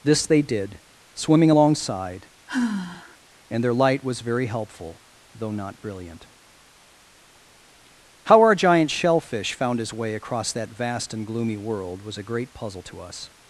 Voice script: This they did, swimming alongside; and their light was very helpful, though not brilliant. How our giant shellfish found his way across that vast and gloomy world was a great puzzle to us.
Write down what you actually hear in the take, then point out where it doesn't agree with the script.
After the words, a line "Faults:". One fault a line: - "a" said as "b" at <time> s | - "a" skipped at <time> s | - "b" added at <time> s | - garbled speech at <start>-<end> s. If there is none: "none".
This they did, swimming alongside; and their light was very helpful, though not brilliant. How our giant shellfish found his way across that vast and gloomy world was a great puzzle to us.
Faults:
none